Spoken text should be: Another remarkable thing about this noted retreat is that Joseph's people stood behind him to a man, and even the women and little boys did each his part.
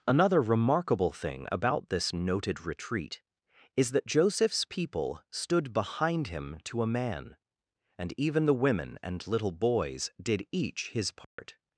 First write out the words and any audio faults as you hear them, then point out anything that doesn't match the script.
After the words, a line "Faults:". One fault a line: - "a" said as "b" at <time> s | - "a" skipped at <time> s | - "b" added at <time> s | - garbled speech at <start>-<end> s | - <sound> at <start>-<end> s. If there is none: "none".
Another remarkable thing about this noted retreat is that Joseph's people stood behind him to a man, and even the women and little boys did each his part.
Faults:
- dropout at 11.2-11.4 s